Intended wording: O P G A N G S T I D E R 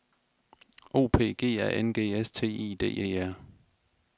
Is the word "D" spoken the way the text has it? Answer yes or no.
yes